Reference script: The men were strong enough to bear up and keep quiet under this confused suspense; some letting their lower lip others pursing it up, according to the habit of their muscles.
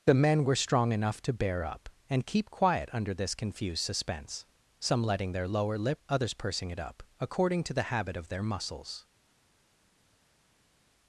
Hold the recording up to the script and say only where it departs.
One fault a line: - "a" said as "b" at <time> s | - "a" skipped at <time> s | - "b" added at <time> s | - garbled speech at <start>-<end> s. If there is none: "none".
none